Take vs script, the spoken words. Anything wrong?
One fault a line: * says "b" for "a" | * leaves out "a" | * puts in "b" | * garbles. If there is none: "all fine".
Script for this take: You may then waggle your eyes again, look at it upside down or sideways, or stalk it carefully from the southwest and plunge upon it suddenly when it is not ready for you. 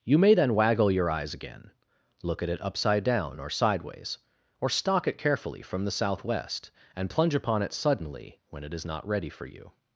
all fine